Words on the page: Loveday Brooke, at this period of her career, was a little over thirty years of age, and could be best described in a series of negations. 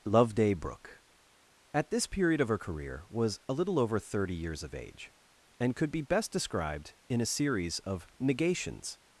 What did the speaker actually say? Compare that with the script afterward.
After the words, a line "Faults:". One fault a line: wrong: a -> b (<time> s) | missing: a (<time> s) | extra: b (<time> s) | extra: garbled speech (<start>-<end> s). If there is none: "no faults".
Loveday Brooke, at this period of her career, was a little over thirty years of age, and could be best described in a series of negations.
Faults:
no faults